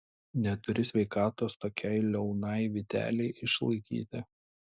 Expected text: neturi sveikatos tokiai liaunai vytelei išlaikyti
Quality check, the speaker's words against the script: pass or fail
pass